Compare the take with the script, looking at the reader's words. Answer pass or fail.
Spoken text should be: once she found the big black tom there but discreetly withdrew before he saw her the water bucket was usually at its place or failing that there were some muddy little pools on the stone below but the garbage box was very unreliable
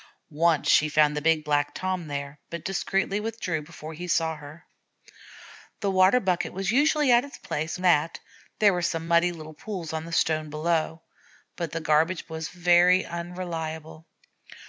fail